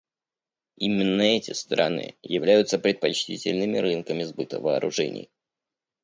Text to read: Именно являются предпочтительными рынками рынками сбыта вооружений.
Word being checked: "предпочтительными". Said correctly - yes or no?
yes